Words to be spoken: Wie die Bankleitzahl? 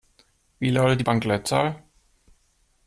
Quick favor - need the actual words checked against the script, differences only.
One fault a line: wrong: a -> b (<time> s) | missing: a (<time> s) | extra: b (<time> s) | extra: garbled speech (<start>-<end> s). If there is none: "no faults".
extra: lautet (0.7 s)